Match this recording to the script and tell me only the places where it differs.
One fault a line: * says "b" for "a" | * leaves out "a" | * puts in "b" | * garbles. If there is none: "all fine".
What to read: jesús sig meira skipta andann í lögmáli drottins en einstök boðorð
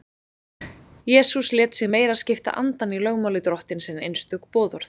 * puts in "lét"